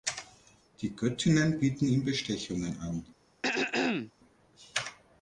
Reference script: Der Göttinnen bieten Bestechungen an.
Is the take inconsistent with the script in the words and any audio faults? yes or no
yes